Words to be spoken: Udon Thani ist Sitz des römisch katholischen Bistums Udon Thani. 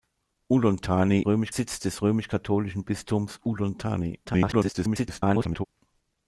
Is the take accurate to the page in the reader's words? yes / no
no